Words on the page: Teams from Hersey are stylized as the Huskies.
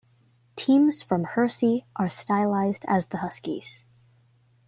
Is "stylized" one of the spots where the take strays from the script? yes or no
no